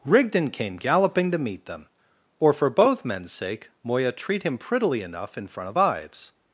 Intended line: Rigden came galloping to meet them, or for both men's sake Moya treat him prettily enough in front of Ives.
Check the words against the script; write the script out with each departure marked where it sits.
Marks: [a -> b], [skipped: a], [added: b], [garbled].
Rigden came galloping to meet them, or for both men's sake Moya treat him prettily enough in front of Ives.